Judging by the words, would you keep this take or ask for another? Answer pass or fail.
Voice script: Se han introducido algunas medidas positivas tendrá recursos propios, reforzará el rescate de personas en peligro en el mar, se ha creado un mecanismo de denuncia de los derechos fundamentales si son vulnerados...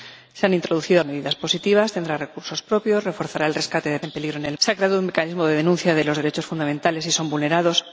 fail